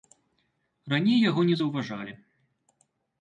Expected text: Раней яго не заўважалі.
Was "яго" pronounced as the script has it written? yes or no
yes